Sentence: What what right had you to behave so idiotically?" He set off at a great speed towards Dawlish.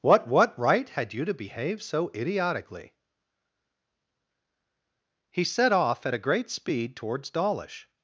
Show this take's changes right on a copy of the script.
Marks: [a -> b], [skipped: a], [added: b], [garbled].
What what right had you to behave so idiotically?" He set off at a great speed towards Dawlish.